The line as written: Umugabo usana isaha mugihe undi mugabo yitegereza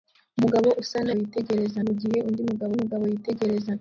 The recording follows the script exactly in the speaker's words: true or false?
false